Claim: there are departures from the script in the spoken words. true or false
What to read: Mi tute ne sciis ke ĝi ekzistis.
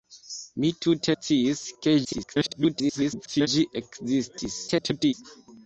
true